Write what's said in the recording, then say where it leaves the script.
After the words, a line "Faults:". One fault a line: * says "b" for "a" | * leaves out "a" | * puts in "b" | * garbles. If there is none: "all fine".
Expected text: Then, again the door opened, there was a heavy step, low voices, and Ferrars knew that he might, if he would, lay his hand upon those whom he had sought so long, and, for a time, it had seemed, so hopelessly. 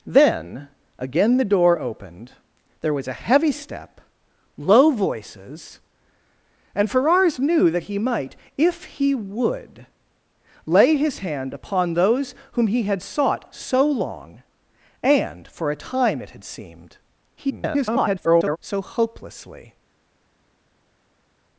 Then, again the door opened, there was a heavy step, low voices, and Ferrars knew that he might, if he would, lay his hand upon those whom he had sought so long, and, for a time, it had seemed, [garbled] so hopelessly.
Faults:
* garbles